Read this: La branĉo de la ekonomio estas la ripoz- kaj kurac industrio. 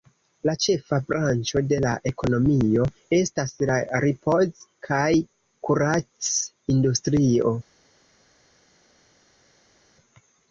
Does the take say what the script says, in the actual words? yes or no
no